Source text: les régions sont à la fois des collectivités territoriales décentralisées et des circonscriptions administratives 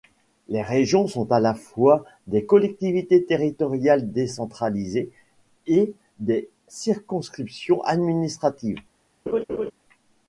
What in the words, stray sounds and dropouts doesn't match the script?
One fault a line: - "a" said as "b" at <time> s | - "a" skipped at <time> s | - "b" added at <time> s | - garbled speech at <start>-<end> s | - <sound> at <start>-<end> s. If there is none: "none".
- laugh at 9.3-9.7 s